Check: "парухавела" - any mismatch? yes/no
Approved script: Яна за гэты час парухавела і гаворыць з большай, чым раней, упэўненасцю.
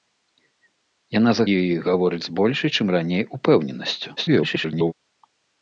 yes